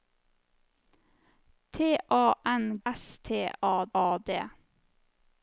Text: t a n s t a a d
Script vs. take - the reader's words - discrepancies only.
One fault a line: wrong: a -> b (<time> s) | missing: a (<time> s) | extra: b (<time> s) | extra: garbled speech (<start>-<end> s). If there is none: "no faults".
no faults